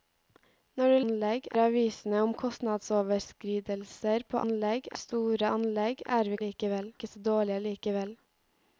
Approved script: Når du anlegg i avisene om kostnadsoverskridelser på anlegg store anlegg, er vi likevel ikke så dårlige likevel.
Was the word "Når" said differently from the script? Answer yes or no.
no